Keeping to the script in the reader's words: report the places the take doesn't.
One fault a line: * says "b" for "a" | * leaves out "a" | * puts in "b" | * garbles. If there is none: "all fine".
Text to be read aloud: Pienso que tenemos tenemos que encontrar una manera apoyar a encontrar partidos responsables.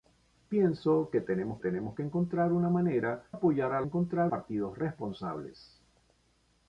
all fine